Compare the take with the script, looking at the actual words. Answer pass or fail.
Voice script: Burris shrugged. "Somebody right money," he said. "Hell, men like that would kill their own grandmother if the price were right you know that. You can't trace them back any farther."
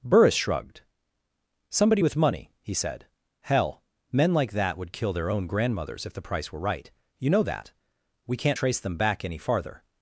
fail